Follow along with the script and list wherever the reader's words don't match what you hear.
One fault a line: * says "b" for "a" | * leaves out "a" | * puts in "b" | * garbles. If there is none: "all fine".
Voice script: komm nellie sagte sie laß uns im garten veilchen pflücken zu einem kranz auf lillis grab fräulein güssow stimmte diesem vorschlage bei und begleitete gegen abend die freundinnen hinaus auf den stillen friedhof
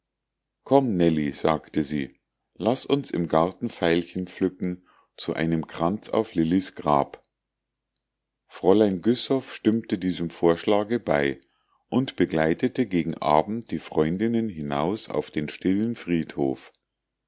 all fine